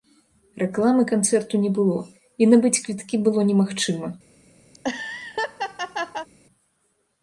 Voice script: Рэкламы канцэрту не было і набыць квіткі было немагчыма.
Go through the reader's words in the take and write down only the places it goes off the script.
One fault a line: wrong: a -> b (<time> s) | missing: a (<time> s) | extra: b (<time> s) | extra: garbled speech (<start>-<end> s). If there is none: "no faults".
no faults